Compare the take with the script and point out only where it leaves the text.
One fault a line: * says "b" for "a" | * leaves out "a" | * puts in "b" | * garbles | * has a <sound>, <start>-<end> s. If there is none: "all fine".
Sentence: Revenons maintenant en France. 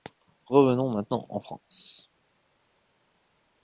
all fine